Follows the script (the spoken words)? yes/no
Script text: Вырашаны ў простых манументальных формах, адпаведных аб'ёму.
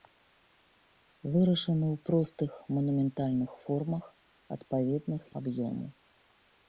yes